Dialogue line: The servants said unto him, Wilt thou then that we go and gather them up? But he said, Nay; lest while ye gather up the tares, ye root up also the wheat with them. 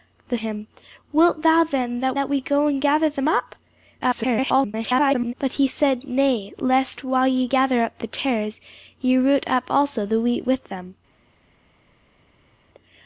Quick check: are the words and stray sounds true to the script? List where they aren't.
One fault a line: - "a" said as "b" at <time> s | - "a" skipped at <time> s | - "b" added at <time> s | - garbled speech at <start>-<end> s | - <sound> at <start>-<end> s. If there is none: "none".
- "servants said unto" skipped at 0.4 s
- "that" added at 2.1 s
- garbled speech at 4.0-5.3 s